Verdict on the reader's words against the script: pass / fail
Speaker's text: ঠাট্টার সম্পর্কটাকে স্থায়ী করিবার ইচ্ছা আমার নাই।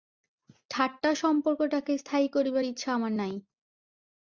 pass